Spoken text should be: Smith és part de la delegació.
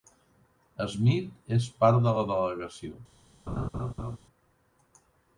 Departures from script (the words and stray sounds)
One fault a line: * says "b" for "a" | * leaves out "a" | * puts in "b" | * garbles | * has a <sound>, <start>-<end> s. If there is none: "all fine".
* has a laugh, 3.5-4.2 s